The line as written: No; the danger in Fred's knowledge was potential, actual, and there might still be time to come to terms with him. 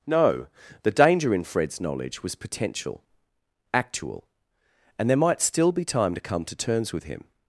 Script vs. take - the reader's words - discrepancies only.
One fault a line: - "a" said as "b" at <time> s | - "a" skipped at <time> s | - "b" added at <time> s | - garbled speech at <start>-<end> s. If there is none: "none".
none